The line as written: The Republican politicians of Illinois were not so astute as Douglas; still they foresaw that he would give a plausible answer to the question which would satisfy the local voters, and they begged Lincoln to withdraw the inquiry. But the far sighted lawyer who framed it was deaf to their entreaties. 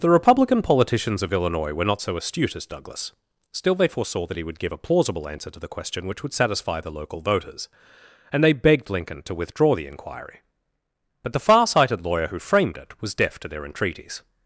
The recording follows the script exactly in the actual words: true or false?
true